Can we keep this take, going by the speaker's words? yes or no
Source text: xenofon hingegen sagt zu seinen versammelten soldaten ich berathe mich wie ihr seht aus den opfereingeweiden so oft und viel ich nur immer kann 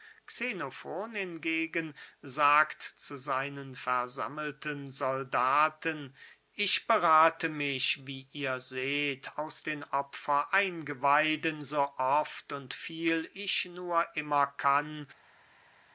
yes